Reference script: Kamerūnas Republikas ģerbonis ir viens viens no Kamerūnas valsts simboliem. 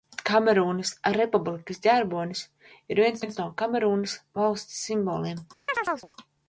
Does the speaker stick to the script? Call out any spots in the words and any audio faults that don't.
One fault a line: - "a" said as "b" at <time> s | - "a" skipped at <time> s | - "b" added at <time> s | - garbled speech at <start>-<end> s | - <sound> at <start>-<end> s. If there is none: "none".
- chirp at 5.7-6.1 s